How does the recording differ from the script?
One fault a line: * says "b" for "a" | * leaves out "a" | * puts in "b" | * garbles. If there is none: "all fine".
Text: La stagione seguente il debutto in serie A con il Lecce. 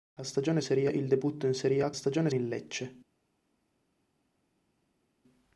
* says "serie" for "seguente"
* says "stagione" for "con"